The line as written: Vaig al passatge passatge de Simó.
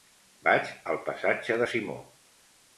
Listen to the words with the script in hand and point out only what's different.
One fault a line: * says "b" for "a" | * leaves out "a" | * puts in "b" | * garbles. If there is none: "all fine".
* leaves out "passatge"